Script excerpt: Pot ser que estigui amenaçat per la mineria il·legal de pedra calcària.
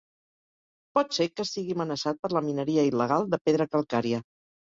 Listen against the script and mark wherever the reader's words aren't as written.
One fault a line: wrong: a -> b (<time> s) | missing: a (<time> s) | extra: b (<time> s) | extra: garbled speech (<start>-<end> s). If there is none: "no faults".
no faults